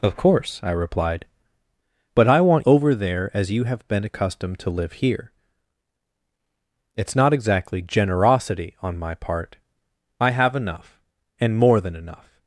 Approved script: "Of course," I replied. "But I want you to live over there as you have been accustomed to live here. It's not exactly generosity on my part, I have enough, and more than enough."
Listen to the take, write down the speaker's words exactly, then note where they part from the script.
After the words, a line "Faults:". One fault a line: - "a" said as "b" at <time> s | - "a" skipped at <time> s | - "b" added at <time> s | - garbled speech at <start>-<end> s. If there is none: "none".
"Of course," I replied. "But I want over there as you have been accustomed to live here. It's not exactly generosity on my part, I have enough, and more than enough."
Faults:
- "you to live" skipped at 2.7 s